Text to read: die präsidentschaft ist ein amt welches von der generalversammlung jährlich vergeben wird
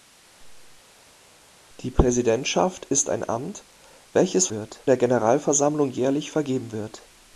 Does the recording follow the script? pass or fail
fail